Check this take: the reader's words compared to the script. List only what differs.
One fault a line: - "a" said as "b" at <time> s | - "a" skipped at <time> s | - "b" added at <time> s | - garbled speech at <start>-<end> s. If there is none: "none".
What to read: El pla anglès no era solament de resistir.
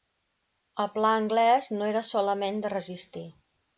none